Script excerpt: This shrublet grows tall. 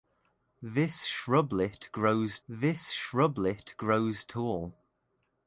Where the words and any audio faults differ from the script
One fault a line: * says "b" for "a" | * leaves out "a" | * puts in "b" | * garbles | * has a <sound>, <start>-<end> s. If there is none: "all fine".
* puts in "this shrublet grows"